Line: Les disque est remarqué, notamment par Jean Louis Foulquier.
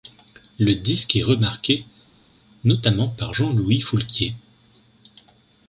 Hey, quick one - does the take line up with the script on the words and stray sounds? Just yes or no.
no